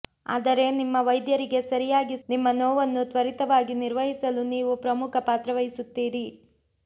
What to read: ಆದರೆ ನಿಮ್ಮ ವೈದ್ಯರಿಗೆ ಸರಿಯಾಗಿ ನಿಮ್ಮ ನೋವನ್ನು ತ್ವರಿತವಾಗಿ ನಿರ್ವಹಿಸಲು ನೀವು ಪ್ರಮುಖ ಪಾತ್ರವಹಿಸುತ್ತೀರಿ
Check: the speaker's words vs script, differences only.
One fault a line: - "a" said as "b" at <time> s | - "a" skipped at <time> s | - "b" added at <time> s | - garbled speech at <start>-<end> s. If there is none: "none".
none